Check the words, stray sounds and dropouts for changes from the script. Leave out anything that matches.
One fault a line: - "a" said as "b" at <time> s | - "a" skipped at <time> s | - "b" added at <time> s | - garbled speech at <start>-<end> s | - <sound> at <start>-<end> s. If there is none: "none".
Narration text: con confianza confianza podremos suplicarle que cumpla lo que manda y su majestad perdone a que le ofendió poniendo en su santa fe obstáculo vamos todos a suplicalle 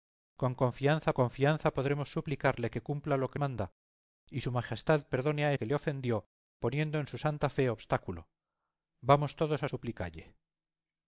none